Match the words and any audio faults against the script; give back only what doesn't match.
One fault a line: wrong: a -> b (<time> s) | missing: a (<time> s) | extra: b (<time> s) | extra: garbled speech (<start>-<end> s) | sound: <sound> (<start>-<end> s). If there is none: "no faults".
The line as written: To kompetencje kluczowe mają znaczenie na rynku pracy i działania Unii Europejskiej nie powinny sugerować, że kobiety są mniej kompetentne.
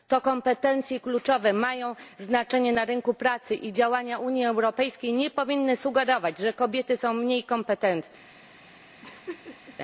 sound: laugh (9.0-9.8 s)